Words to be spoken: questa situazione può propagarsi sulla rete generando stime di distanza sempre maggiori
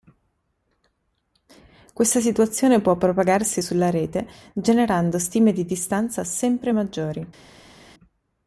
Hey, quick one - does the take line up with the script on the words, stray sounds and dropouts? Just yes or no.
yes